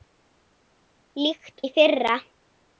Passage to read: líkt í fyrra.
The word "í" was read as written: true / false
true